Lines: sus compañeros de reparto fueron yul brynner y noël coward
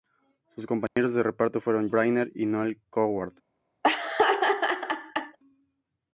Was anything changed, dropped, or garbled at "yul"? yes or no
yes